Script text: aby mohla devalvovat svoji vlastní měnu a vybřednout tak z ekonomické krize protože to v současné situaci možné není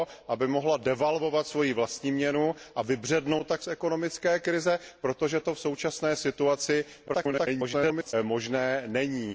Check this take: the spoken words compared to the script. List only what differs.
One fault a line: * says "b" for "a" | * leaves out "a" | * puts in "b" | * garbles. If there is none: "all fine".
* garbles